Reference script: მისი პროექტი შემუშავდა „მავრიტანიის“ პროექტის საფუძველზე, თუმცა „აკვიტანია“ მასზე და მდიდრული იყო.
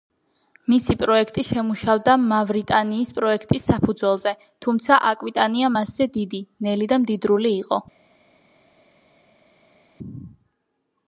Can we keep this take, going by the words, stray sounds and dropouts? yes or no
no